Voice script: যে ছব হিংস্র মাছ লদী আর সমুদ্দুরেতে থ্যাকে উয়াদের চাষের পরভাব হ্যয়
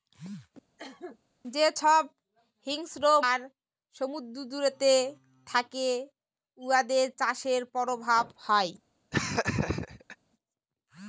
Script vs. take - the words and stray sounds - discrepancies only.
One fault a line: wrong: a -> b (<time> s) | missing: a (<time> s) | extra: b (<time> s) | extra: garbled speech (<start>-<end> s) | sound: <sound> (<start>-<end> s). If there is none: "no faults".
sound: cough (0.8-1.2 s)
missing: মাছ লদী (3.0 s)
sound: laugh (9.1-10.2 s)